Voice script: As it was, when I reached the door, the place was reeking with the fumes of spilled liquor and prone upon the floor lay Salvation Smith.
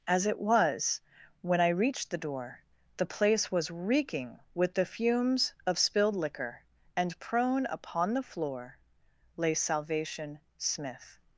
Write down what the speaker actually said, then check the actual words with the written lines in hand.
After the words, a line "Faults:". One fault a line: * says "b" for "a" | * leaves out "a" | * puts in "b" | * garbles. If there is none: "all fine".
As it was, when I reached the door, the place was reeking with the fumes of spilled liquor and prone upon the floor lay Salvation Smith.
Faults:
all fine